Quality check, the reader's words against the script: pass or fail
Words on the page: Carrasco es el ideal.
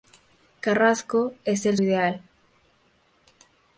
pass